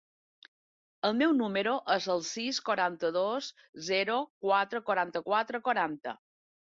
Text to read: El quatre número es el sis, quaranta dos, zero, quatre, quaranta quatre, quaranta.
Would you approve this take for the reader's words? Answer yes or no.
no